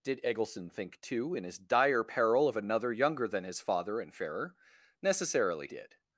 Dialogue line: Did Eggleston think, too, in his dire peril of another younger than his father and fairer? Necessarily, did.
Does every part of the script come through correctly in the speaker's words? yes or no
yes